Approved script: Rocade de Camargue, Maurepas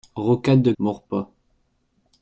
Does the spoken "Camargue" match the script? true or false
false